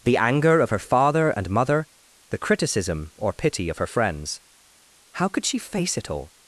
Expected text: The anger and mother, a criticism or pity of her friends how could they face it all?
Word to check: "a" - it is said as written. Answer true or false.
false